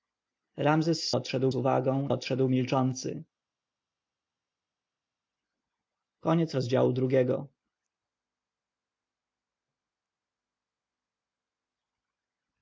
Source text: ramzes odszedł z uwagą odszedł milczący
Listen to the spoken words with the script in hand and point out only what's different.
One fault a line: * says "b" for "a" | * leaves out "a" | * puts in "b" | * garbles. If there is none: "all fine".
all fine